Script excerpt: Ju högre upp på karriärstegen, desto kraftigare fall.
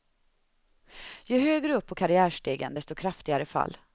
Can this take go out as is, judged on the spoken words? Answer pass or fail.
pass